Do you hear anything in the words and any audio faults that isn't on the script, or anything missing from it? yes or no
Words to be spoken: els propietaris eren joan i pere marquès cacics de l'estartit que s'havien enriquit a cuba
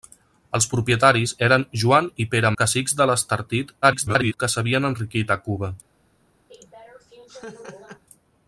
yes